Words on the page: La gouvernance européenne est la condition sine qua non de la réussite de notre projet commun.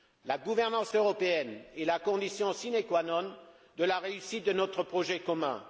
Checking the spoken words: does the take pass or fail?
pass